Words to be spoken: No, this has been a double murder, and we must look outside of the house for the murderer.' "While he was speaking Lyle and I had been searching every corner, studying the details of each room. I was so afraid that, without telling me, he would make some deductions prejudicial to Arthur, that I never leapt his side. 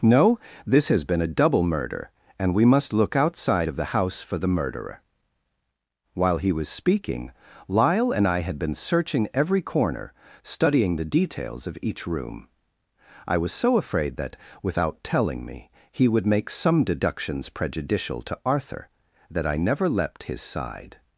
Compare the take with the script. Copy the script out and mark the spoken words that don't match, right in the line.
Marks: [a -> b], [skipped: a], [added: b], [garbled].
No, this has been a double murder, and we must look outside of the house for the murderer.' "While he was speaking Lyle and I had been searching every corner, studying the details of each room. I was so afraid that, without telling me, he would make some deductions prejudicial to Arthur, that I never leapt his side.